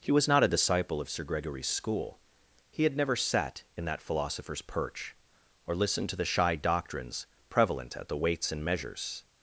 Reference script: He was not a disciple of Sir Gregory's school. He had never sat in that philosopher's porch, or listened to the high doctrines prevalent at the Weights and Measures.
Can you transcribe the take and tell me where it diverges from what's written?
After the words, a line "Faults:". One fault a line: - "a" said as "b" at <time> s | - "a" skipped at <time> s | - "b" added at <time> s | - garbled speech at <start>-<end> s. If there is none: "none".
He was not a disciple of Sir Gregory's school. He had never sat in that philosopher's perch, or listened to the shy doctrines prevalent at the Weights and Measures.
Faults:
- "porch" said as "perch" at 4.6 s
- "high" said as "shy" at 6.2 s